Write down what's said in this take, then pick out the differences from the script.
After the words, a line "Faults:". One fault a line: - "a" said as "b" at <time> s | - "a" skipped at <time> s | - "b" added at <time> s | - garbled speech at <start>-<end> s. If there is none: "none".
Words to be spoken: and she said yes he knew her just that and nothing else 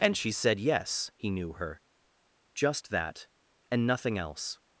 and she said yes he knew her just that and nothing else
Faults:
none